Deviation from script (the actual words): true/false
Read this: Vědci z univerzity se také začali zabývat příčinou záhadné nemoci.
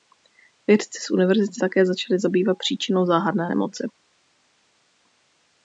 true